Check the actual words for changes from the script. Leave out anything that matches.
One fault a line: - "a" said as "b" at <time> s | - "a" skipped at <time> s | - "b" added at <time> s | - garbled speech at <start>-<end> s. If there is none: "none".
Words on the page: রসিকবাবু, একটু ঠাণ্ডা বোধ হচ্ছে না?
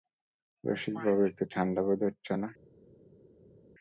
none